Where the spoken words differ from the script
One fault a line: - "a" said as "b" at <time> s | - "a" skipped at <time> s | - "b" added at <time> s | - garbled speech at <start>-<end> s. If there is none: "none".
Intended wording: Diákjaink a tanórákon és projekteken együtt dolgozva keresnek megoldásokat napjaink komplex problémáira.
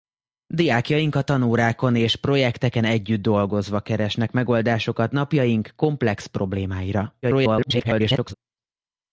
- garbled speech at 7.2-8.3 s